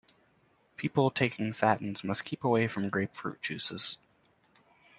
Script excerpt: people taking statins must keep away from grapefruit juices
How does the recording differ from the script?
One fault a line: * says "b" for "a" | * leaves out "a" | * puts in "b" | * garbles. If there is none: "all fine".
all fine